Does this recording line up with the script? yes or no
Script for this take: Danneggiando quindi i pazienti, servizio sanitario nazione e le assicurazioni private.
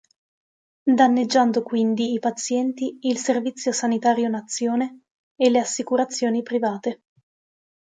no